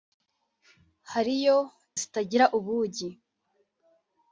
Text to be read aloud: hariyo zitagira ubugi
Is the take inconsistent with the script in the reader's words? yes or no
no